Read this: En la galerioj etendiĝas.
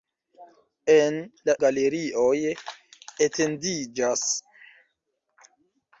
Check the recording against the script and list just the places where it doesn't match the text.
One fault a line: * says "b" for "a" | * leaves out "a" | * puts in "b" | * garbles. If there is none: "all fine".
all fine